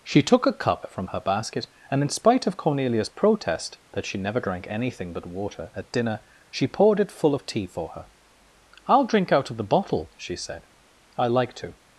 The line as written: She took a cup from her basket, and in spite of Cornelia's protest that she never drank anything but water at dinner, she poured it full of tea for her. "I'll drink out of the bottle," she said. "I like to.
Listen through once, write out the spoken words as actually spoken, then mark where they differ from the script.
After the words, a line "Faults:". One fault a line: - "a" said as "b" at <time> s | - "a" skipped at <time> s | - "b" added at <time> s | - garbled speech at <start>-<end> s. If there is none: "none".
She took a cup from her basket, and in spite of Cornelia's protest that she never drank anything but water at dinner, she poured it full of tea for her. "I'll drink out of the bottle," she said. "I like to.
Faults:
none